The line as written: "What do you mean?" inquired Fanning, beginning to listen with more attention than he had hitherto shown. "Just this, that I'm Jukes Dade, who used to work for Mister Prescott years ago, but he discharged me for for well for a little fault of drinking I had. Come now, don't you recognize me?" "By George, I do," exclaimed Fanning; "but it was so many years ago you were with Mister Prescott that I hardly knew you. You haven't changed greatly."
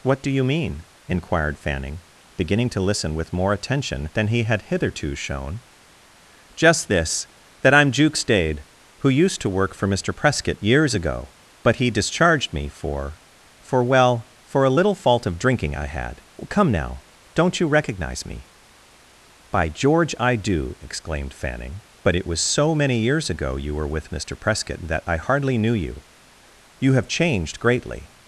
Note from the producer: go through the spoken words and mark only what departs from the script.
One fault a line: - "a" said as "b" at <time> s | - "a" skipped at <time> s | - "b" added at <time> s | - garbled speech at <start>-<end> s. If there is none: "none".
- "haven't" said as "have" at 26.9 s